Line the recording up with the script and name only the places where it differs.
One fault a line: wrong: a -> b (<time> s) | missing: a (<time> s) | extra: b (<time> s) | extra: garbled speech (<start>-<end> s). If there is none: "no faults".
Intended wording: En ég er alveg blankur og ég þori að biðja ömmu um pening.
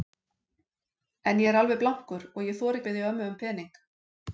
no faults